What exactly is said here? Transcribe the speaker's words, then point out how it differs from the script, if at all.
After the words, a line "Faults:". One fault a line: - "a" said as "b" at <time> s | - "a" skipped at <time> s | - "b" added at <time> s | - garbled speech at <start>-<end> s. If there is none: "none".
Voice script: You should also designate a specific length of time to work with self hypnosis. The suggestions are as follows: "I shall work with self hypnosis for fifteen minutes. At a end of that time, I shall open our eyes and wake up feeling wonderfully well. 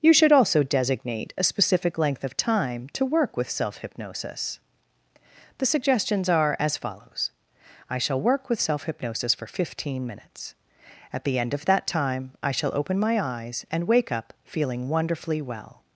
You should also designate a specific length of time to work with self hypnosis. The suggestions are as follows: "I shall work with self hypnosis for fifteen minutes. At the end of that time, I shall open my eyes and wake up feeling wonderfully well.
Faults:
- "a" said as "the" at 11.2 s
- "our" said as "my" at 13.0 s